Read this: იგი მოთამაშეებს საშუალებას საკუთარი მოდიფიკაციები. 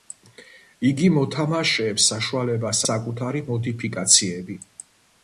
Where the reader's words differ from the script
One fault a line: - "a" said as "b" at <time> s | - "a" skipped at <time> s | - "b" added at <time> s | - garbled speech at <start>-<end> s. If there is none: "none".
none